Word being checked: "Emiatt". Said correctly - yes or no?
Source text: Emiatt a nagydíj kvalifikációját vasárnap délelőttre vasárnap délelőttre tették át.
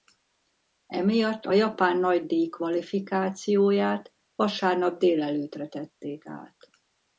yes